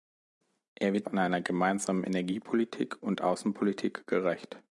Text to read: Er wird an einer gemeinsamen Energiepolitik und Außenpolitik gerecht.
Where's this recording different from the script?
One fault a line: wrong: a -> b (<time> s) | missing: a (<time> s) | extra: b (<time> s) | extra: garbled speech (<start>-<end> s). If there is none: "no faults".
no faults